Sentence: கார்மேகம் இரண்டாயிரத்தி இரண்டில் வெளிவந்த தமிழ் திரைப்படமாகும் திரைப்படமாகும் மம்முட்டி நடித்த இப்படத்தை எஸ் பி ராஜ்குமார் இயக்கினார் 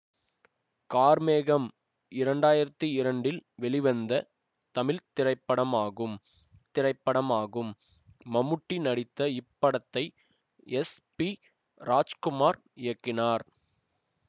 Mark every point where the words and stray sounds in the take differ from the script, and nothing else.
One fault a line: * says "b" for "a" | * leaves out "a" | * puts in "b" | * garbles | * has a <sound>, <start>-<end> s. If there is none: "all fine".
all fine